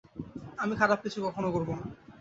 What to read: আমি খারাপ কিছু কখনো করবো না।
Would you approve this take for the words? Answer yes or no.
yes